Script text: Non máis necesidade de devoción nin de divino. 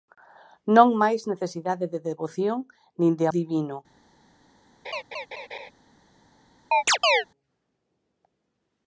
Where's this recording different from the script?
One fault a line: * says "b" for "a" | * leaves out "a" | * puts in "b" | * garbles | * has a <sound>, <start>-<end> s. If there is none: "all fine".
* has a laugh, 4.8-5.7 s
* has a chirp, 6.7-7.2 s